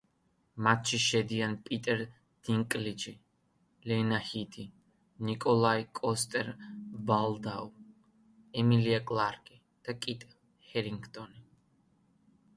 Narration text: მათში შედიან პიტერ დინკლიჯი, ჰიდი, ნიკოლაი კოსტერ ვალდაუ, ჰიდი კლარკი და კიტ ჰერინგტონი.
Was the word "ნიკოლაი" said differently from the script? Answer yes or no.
no